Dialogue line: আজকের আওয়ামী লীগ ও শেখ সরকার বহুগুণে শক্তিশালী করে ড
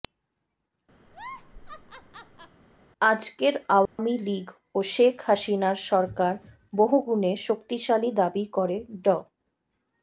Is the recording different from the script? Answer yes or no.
yes